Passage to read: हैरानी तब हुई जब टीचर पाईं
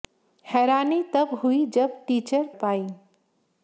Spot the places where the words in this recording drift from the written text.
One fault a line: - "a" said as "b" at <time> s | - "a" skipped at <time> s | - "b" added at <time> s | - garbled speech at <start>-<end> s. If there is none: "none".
none